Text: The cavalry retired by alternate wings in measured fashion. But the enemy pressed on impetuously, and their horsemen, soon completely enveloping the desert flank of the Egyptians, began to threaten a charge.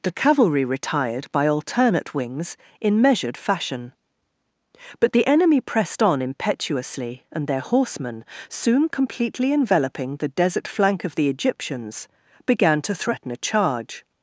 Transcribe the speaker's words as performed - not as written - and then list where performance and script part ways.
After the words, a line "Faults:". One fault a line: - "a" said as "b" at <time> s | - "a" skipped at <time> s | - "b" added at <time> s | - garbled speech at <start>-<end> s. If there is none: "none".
The cavalry retired by alternate wings in measured fashion. But the enemy pressed on impetuously, and their horsemen, soon completely enveloping the desert flank of the Egyptians, began to threaten a charge.
Faults:
none